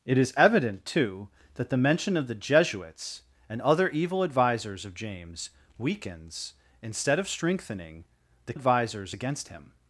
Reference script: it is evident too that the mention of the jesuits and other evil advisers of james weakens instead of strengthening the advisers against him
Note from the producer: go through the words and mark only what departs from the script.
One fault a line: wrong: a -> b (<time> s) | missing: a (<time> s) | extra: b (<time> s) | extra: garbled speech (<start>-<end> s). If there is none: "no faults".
no faults